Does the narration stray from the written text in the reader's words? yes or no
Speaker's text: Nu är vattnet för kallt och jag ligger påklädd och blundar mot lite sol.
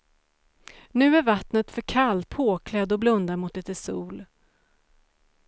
yes